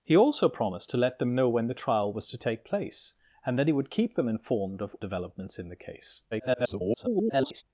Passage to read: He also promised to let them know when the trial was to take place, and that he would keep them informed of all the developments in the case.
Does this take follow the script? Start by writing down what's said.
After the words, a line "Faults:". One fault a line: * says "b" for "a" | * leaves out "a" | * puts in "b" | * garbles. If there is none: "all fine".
He also promised to let them know when the trial was to take place, and that he would keep them informed of developments in the case. [garbled]
Faults:
* leaves out "all the"
* garbles